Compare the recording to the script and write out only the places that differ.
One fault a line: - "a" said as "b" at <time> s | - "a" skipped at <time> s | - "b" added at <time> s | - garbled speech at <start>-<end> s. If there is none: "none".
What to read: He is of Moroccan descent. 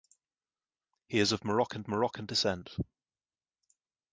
- "Moroccan" added at 1.9 s